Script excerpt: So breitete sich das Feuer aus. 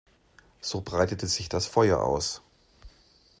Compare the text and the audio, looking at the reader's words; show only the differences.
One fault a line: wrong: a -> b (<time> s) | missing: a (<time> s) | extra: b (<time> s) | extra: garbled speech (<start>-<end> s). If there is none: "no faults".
no faults